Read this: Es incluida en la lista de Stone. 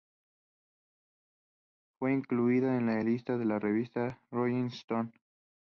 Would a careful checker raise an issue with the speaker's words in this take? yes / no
yes